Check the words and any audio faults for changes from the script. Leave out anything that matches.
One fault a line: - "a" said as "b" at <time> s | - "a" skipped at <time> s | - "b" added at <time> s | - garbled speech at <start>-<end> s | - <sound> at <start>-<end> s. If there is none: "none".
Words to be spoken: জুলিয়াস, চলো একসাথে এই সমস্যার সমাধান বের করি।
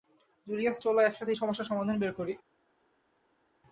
none